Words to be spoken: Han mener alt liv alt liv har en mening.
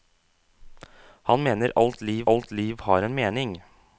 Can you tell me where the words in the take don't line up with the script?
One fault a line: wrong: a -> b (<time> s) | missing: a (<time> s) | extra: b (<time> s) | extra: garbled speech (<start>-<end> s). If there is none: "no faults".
no faults